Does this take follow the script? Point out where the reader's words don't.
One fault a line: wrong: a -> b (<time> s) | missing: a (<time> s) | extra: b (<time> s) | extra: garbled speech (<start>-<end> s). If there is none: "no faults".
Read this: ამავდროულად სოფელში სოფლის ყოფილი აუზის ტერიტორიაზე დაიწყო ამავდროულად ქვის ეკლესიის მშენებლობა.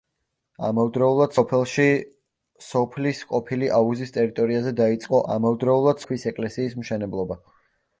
no faults